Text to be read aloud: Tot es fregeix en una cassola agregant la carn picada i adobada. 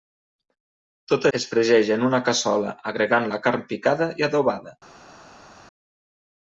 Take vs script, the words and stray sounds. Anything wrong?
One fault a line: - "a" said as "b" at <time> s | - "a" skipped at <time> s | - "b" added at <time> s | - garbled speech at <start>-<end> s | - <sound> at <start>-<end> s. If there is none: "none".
none